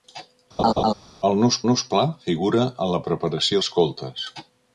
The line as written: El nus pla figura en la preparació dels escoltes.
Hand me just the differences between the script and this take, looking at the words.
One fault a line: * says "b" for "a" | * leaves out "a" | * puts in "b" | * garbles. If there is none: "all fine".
* puts in "nus"
* leaves out "dels"